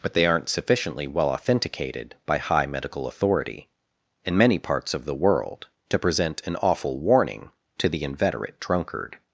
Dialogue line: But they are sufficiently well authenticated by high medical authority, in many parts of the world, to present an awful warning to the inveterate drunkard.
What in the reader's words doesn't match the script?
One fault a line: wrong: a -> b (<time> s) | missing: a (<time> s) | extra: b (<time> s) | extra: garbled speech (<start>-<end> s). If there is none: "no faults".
wrong: are -> aren't (0.2 s)